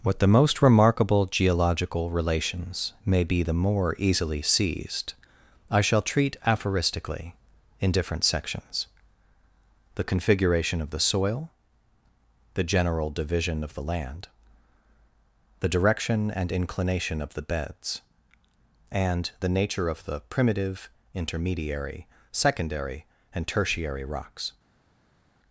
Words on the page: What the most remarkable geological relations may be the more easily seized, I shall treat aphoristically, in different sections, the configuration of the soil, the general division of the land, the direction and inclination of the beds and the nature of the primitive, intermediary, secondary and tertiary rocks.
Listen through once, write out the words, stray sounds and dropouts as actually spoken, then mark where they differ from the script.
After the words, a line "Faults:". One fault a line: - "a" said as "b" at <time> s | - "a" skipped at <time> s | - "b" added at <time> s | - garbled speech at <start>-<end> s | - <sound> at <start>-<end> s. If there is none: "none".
What the most remarkable geological relations may be the more easily seized, I shall treat aphoristically, in different sections, the configuration of the soil, the general division of the land, the direction and inclination of the beds and the nature of the primitive, intermediary, secondary and tertiary rocks.
Faults:
none